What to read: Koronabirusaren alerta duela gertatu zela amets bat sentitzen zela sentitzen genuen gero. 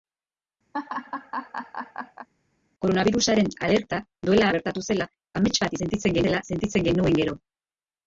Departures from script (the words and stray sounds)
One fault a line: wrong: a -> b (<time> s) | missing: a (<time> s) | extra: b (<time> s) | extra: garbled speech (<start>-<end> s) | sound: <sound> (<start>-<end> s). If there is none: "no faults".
sound: laugh (0.7-2.3 s)